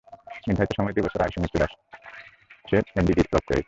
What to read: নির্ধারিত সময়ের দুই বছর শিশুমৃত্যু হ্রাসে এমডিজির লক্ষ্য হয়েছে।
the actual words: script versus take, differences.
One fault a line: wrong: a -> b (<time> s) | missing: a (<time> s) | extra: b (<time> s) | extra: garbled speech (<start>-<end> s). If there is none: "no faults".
no faults